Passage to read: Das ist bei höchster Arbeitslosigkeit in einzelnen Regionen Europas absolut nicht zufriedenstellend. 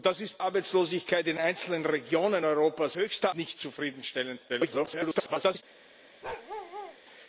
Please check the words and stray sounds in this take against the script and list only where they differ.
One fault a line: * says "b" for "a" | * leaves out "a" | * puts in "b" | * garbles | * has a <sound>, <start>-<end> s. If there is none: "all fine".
* leaves out "bei höchster"
* says "höchster" for "absolut"
* garbles
* has a bark, 6.2-7.0 s